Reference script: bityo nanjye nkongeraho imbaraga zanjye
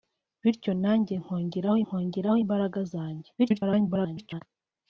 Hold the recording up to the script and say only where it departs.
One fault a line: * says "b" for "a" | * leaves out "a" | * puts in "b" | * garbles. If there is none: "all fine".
* puts in "nkongeraho"
* garbles